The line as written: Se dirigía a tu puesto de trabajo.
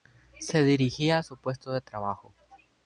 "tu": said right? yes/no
no